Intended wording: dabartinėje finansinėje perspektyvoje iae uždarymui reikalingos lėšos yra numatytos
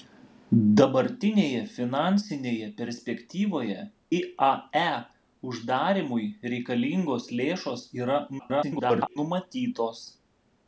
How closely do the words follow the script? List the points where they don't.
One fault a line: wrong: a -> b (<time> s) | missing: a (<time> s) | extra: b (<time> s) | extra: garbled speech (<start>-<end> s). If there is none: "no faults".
extra: garbled speech (8.4-9.2 s)